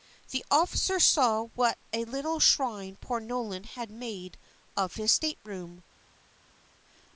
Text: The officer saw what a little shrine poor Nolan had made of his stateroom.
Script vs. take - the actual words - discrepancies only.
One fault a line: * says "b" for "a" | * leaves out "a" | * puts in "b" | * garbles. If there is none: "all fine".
all fine